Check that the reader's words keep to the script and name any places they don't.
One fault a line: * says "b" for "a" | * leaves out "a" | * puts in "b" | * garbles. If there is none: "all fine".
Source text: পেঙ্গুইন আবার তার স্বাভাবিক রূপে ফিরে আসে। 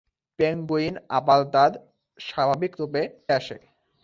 * leaves out "ফিরে"